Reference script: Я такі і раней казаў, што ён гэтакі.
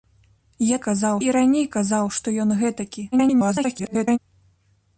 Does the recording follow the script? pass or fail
fail